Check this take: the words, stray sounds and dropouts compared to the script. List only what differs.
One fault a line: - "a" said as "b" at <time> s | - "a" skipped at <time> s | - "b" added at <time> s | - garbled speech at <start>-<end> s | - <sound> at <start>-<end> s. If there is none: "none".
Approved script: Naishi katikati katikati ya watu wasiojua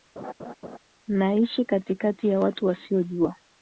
- laugh at 0.2-0.8 s
- "katikati" skipped at 2.3 s